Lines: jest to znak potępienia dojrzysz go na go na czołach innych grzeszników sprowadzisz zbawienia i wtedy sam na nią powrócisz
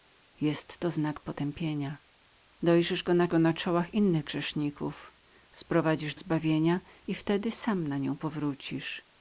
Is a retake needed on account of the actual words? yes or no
no